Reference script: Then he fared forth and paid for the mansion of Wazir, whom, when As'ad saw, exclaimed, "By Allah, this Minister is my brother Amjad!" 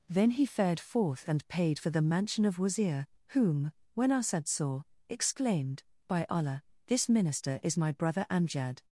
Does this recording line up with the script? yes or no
yes